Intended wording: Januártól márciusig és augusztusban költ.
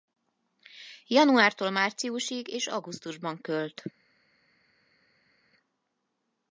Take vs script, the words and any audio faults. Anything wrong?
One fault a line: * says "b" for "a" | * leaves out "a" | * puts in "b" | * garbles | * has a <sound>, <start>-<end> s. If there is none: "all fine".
all fine